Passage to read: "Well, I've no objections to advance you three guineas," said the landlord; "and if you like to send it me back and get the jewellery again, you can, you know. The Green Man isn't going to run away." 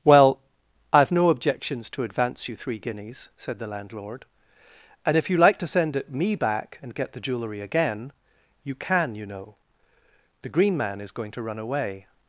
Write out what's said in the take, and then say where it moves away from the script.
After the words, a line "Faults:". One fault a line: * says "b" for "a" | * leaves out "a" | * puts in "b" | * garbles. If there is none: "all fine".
"Well, I've no objections to advance you three guineas," said the landlord; "and if you like to send it me back and get the jewellery again, you can, you know. The Green Man is going to run away."
Faults:
* says "is" for "isn't"